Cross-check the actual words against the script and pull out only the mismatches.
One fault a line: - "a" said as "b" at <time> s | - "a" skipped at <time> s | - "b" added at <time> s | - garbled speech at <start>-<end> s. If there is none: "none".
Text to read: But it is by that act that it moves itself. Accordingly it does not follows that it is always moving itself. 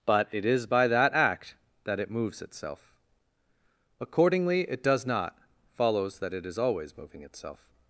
none